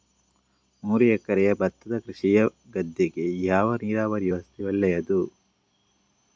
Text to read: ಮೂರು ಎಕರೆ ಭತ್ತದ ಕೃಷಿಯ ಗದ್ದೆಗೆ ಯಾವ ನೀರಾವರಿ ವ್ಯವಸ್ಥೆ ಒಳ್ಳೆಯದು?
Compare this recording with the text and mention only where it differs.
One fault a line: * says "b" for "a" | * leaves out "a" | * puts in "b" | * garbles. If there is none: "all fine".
all fine